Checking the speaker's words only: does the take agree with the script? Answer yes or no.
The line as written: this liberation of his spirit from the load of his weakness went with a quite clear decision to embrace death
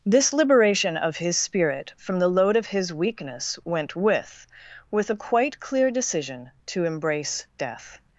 no